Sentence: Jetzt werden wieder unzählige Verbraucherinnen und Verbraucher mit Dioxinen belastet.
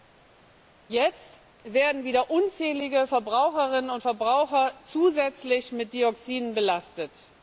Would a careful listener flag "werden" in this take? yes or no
no